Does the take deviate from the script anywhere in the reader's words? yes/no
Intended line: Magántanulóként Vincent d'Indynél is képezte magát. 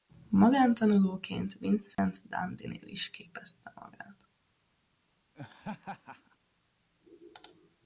no